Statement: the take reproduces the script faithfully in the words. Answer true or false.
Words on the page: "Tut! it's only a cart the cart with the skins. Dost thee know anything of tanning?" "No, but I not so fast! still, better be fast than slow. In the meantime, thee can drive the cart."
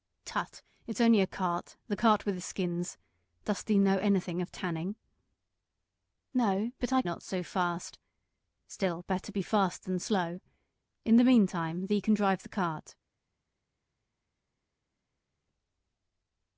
true